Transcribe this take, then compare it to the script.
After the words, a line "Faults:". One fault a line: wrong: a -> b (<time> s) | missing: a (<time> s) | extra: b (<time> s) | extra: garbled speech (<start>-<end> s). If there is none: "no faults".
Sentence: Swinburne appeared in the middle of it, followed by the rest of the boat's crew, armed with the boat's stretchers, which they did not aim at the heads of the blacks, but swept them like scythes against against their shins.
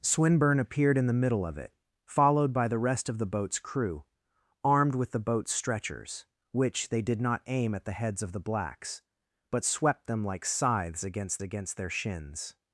Swinburne appeared in the middle of it, followed by the rest of the boat's crew, armed with the boat's stretchers, which they did not aim at the heads of the blacks, but swept them like scythes against against their shins.
Faults:
no faults